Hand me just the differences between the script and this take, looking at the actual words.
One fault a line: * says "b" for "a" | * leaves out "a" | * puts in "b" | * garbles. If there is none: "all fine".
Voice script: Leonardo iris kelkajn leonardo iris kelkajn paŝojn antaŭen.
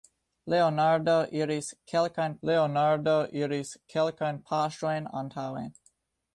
all fine